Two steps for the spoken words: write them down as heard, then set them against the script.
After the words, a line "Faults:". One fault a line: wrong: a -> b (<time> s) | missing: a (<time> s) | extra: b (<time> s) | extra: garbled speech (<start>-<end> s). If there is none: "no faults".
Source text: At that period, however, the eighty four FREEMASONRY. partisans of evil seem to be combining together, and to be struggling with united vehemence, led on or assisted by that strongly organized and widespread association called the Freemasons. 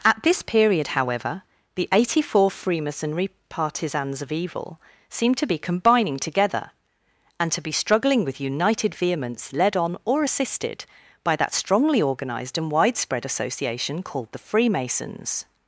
At this period, however, the eighty four FREEMASONRY. partisans of evil seem to be combining together, and to be struggling with united vehemence, led on or assisted by that strongly organized and widespread association called the Freemasons.
Faults:
wrong: that -> this (0.2 s)